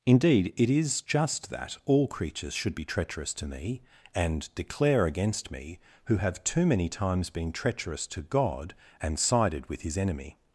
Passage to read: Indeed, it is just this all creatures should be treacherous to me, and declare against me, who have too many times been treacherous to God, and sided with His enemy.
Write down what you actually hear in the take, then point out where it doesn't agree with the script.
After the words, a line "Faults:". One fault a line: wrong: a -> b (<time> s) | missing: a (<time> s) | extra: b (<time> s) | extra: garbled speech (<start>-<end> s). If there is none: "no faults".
Indeed, it is just that all creatures should be treacherous to me, and declare against me, who have too many times been treacherous to God, and sided with His enemy.
Faults:
wrong: this -> that (1.5 s)